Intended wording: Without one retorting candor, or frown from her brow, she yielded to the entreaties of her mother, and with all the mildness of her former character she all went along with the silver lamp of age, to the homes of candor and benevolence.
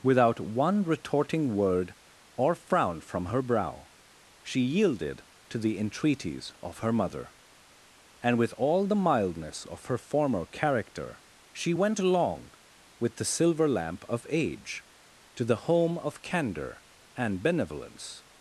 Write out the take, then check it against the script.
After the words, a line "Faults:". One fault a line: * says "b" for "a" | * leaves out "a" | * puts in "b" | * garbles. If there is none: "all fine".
Without one retorting word, or frown from her brow, she yielded to the entreaties of her mother, and with all the mildness of her former character she went along with the silver lamp of age, to the home of candor and benevolence.
Faults:
* says "word" for "candor"
* leaves out "all"
* says "home" for "homes"